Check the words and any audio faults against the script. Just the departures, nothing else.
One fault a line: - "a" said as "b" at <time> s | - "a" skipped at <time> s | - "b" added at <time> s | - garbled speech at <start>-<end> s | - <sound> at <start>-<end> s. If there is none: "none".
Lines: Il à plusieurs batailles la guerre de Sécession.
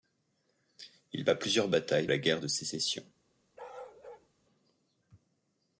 - bark at 3.6-4.3 s